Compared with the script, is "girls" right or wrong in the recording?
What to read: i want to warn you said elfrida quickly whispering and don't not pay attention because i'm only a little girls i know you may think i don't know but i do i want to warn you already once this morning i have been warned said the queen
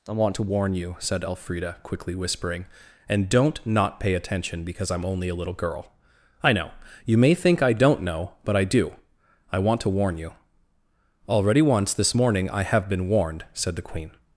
wrong